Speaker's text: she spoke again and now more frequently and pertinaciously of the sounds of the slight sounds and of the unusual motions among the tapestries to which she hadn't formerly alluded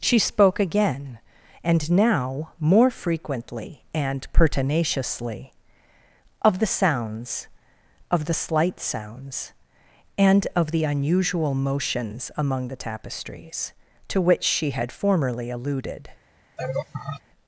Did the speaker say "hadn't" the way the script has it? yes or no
no